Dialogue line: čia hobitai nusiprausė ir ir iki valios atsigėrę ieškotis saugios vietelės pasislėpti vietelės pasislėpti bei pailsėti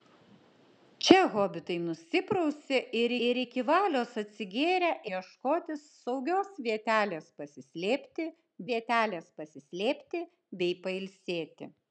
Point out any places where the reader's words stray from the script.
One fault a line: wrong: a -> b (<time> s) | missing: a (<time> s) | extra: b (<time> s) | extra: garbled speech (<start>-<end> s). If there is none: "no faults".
no faults